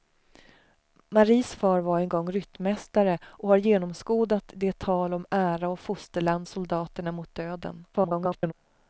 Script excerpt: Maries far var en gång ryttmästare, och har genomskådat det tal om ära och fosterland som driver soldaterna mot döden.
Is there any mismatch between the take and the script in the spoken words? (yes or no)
yes